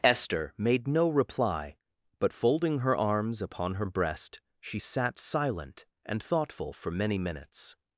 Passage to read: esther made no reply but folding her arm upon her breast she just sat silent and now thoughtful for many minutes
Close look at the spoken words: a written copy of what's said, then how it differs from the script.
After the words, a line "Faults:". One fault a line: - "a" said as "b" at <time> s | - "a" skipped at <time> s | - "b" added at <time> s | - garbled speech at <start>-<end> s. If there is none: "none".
esther made no reply but folding her arms upon her breast she sat silent and thoughtful for many minutes
Faults:
- "arm" said as "arms" at 3.0 s
- "just" skipped at 4.8 s
- "now" skipped at 6.2 s